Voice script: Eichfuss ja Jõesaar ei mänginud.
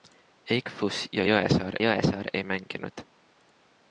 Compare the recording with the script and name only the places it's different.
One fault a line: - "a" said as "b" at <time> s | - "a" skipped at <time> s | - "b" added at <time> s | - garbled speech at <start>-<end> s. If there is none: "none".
- "Jõesaar" added at 1.8 s